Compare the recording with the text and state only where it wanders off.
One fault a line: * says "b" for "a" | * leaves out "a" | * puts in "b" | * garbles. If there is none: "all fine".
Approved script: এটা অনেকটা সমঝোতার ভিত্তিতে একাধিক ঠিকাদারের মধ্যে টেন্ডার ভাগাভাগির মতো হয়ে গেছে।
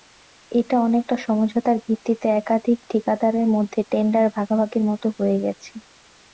all fine